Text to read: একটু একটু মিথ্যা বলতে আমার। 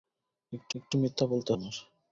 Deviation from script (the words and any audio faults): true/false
false